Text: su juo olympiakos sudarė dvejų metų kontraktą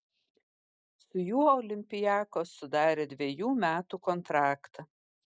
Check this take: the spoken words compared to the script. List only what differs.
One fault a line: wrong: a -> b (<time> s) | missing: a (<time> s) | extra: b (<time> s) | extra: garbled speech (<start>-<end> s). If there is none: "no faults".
no faults